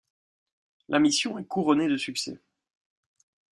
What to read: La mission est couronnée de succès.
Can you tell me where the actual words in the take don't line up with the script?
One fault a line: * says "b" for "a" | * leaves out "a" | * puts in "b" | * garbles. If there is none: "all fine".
all fine